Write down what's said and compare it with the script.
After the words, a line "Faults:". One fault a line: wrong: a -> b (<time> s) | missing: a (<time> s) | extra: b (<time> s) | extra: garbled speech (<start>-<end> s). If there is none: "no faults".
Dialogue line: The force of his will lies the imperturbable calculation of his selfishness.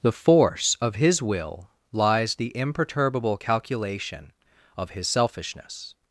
The force of his will lies the imperturbable calculation of his selfishness.
Faults:
no faults